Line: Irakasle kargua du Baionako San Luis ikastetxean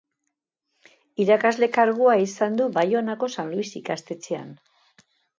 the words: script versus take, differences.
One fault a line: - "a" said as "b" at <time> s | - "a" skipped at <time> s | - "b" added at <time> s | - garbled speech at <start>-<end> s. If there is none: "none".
- "izan" added at 2.2 s